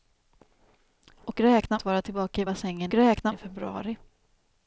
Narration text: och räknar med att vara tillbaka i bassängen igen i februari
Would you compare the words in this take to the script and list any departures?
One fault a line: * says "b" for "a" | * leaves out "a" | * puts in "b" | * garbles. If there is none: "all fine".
* leaves out "med"
* says "räknar" for "igen"